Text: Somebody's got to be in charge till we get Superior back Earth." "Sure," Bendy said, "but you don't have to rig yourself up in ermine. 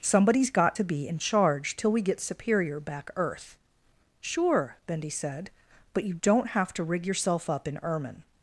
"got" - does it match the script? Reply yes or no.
yes